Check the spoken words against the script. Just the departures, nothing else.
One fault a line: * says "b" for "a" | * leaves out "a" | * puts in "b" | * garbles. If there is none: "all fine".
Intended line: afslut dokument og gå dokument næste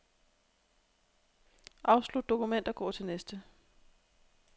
* says "til" for "dokument"